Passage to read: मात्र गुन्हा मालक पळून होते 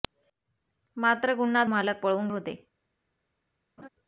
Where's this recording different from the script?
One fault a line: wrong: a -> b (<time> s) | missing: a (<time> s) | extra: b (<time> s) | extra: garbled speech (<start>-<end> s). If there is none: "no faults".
no faults